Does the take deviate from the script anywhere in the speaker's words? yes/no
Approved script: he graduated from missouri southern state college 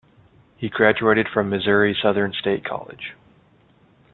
no